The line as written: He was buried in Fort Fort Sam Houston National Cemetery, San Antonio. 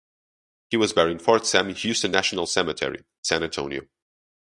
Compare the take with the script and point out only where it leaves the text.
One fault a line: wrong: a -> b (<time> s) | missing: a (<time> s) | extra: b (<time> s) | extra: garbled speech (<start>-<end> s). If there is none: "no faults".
missing: Fort (1.4 s)